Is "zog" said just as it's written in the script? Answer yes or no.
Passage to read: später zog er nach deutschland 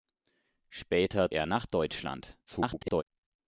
no